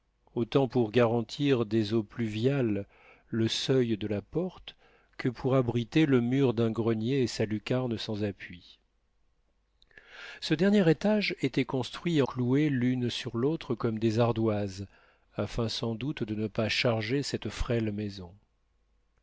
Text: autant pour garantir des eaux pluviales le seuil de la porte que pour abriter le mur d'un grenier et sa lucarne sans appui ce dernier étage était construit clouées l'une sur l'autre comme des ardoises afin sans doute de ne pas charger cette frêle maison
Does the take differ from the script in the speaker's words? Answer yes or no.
no